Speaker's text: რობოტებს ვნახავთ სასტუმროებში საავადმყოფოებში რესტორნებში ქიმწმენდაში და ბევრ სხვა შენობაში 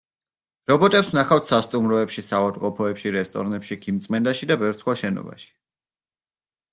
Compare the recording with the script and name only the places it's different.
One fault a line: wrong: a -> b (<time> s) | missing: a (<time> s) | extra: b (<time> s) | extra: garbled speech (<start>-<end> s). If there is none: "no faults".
no faults